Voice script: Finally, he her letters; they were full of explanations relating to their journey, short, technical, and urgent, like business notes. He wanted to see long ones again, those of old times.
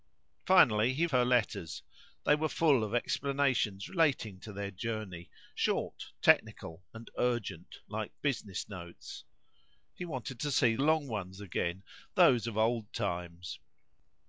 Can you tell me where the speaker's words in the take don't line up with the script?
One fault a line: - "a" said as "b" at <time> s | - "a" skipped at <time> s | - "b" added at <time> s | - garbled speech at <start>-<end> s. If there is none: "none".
none